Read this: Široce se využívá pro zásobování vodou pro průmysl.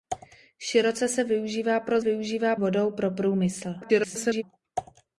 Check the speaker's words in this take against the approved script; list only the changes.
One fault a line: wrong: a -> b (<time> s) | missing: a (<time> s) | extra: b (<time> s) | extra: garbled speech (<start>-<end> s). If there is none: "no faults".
wrong: zásobování -> využívá (2.0 s)
extra: garbled speech (3.8-4.4 s)